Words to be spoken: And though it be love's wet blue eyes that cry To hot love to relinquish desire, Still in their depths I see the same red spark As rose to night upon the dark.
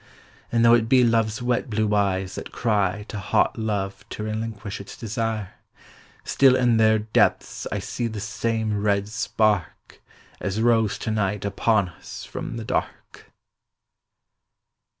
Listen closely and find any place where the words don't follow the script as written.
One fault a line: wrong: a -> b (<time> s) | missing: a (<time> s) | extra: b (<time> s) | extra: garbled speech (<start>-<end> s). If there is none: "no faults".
extra: its (4.8 s)
extra: us from (11.9 s)